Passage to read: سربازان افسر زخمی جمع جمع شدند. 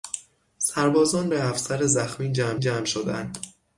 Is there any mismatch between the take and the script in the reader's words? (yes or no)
no